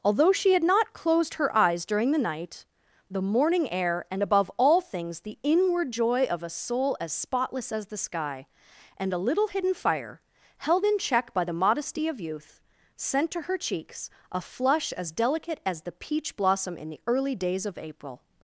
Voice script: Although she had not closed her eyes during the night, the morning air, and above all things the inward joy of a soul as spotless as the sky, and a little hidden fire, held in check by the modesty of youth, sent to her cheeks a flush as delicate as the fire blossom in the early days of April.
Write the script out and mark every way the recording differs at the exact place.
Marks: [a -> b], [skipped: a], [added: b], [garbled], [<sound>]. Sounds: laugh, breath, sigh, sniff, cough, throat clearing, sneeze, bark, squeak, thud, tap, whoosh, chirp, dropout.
Although she had not closed her eyes during the night, the morning air, and above all things the inward joy of a soul as spotless as the sky, and a little hidden fire, held in check by the modesty of youth, sent to her cheeks a flush as delicate as the [fire -> peach] blossom in the early days of April.